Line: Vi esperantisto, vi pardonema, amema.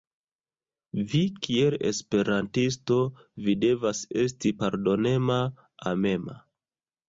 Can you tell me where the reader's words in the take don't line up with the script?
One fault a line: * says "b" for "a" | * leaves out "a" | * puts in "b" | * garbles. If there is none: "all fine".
* puts in "kiel"
* puts in "devas esti"